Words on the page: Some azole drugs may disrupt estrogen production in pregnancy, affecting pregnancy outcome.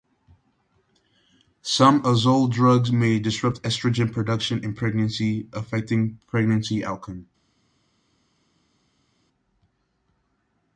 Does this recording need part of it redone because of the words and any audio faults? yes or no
no